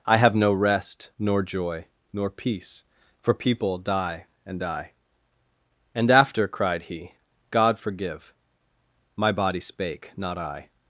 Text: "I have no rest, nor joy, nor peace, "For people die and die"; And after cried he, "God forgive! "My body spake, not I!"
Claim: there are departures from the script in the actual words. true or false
false